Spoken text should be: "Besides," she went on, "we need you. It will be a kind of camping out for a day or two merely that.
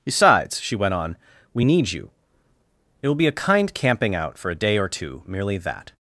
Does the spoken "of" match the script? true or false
false